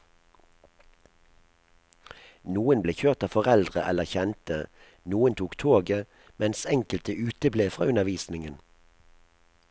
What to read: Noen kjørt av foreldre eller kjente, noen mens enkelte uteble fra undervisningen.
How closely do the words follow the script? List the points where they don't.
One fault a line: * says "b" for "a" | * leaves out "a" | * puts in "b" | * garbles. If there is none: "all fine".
* puts in "ble"
* puts in "tok toget"